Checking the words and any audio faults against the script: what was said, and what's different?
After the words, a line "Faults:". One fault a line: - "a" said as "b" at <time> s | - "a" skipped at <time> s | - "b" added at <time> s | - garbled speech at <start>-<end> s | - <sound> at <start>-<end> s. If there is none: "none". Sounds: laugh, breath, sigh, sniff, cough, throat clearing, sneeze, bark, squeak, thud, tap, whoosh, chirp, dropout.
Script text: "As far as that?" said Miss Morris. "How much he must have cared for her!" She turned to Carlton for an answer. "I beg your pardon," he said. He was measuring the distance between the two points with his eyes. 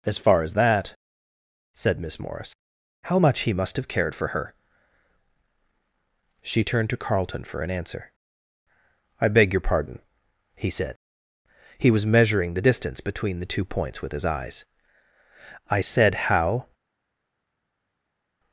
"As far as that?" said Miss Morris. "How much he must have cared for her!" She turned to Carlton for an answer. "I beg your pardon," he said. He was measuring the distance between the two points with his eyes. "I said how
Faults:
- "I said how" added at 15.7 s